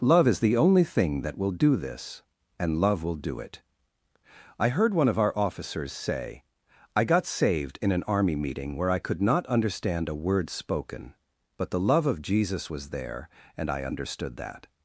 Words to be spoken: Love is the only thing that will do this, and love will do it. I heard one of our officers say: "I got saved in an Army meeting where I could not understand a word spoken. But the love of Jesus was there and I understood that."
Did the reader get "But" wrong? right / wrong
right